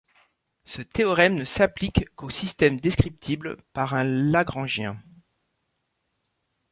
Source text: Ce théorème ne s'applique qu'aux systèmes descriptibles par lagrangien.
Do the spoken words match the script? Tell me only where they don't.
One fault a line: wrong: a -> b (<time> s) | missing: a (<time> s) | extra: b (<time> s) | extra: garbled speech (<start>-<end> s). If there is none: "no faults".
extra: un (3.9 s)